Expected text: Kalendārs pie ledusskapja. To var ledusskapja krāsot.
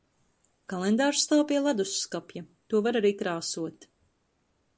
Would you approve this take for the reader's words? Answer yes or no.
no